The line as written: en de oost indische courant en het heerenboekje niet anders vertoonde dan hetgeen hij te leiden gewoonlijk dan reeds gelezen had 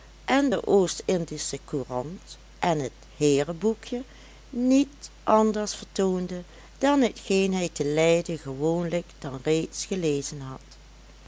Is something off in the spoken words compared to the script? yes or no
no